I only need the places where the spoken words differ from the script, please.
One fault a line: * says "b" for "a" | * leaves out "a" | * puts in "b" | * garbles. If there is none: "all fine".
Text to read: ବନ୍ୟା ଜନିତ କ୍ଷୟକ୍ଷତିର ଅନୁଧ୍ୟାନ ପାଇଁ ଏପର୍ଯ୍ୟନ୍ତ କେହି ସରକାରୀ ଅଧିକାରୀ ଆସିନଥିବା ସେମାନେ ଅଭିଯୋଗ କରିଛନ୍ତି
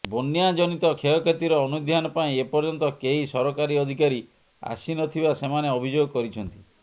all fine